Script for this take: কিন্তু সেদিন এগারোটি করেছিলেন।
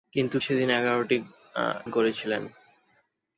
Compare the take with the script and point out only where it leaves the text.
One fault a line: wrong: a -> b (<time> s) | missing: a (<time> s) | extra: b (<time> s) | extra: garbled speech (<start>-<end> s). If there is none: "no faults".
no faults